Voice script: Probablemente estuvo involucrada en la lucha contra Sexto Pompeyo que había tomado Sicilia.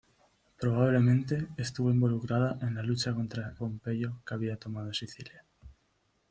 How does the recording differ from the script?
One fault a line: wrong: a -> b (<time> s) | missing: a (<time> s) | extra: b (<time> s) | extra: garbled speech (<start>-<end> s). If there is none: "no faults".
missing: Sexto (3.5 s)